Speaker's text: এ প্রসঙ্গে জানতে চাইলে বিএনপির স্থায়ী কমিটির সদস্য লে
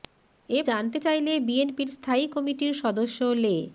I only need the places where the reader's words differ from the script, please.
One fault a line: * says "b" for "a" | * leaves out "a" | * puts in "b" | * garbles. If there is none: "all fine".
* leaves out "প্রসঙ্গে"